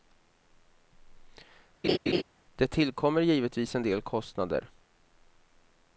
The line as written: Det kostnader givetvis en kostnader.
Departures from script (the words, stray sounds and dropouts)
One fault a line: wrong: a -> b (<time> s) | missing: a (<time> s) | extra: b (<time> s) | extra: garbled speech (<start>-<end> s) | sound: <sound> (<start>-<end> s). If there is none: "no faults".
sound: laugh (1.8-2.2 s)
wrong: kostnader -> tillkommer (2.7 s)
extra: del (3.8 s)